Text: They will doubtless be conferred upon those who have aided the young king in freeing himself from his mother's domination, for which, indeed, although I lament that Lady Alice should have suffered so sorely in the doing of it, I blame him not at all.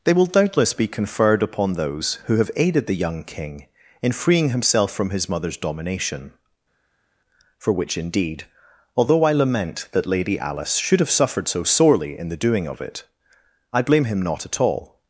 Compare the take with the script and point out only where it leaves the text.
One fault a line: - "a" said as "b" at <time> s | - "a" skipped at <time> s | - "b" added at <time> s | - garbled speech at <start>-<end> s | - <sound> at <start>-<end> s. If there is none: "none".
none